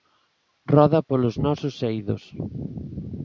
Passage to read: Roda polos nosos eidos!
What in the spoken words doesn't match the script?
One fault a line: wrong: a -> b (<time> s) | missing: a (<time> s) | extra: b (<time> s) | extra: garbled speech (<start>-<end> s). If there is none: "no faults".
no faults